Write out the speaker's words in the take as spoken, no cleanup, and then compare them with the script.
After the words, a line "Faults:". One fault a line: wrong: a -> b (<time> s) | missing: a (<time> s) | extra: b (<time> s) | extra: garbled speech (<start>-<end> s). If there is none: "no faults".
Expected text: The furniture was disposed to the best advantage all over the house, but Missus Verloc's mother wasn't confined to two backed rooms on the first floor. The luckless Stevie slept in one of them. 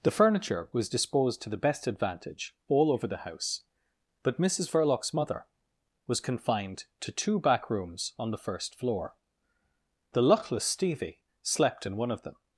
The furniture was disposed to the best advantage all over the house, but Missus Verloc's mother was confined to two back rooms on the first floor. The luckless Stevie slept in one of them.
Faults:
wrong: wasn't -> was (6.1 s)
wrong: backed -> back (7.4 s)